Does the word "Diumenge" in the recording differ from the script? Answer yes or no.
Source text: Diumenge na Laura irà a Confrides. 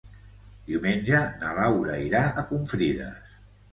no